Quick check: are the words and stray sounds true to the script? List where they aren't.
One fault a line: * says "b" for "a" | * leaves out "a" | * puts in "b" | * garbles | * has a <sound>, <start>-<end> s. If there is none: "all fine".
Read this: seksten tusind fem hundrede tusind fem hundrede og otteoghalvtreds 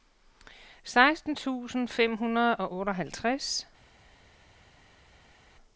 * leaves out "tusind fem hundrede"